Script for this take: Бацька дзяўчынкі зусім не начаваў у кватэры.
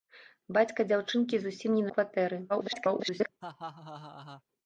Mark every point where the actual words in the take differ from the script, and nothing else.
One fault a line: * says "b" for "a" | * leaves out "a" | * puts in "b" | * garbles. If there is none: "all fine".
* leaves out "начаваў"
* garbles